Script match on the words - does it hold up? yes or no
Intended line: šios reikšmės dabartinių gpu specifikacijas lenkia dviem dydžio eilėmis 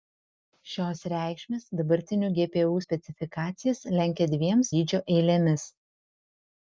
yes